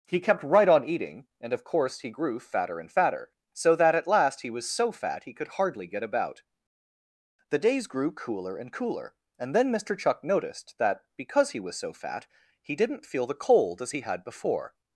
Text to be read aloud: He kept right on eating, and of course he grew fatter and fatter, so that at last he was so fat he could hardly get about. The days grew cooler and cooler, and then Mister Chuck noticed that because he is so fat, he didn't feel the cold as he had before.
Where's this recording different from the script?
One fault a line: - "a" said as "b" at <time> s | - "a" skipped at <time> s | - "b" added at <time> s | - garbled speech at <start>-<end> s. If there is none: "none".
- "is" said as "was" at 11.6 s